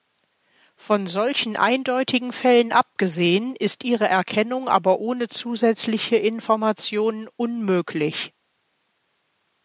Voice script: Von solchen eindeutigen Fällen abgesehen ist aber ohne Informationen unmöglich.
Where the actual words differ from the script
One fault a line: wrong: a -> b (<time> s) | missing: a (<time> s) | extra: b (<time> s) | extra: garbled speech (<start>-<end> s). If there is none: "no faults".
extra: ihre Erkennung (3.8 s)
extra: zusätzliche (5.3 s)